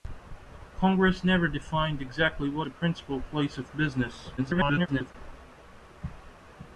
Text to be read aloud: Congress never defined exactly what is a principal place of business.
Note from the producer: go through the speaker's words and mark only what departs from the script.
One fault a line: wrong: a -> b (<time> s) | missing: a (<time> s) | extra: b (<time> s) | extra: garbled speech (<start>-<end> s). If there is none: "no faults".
missing: is (2.7 s)
extra: garbled speech (4.4-5.1 s)